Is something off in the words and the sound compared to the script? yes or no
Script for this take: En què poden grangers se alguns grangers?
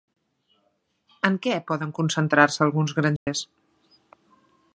yes